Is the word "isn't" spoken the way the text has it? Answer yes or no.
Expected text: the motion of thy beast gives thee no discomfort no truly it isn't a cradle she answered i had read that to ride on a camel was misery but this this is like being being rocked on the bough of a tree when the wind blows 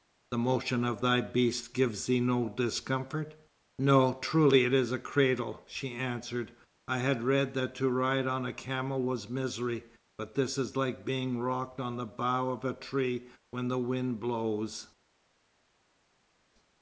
no